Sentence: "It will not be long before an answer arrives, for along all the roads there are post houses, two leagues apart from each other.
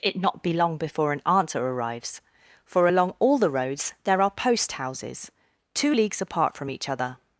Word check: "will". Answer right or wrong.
wrong